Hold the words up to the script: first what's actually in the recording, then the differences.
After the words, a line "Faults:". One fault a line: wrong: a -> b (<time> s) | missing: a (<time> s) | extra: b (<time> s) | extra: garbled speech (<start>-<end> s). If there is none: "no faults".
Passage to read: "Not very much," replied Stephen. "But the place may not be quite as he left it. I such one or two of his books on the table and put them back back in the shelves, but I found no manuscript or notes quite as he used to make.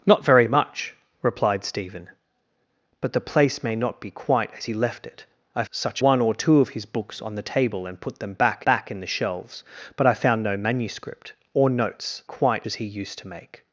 "Not very much," replied Stephen. "But the place may not be quite as he left it. I such one or two of his books on the table and put them back back in the shelves, but I found no manuscript or notes quite as he used to make.
Faults:
no faults